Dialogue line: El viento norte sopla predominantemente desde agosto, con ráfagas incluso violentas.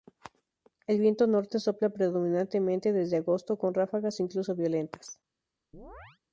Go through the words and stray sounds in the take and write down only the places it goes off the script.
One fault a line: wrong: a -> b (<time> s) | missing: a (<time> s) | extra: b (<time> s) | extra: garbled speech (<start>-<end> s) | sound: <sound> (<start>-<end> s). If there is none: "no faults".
sound: chirp (5.7-6.2 s)